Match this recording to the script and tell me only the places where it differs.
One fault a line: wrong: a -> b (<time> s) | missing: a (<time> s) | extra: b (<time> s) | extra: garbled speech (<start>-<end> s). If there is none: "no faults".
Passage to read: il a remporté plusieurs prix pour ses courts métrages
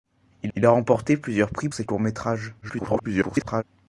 extra: il (0.5 s)
missing: pour (1.7 s)
extra: garbled speech (2.6-3.6 s)